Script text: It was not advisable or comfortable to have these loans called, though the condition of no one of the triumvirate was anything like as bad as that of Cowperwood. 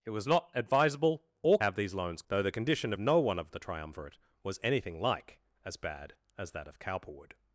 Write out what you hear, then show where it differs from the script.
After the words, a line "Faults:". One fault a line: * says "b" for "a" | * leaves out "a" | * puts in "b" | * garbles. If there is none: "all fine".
It was not advisable or have these loans though the condition of no one of the triumvirate was anything like as bad as that of Cowperwood.
Faults:
* leaves out "comfortable to"
* leaves out "called"